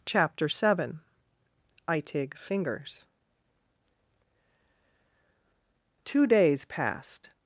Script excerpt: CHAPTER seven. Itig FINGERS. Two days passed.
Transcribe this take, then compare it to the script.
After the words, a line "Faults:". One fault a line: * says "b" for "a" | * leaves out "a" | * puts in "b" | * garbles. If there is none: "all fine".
CHAPTER seven. Itig FINGERS. Two days passed.
Faults:
all fine